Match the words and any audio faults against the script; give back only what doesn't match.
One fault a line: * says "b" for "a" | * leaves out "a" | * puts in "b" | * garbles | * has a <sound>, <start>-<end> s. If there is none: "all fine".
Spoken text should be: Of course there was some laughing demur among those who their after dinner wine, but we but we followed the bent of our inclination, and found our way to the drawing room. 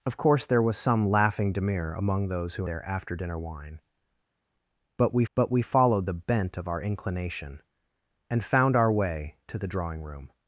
all fine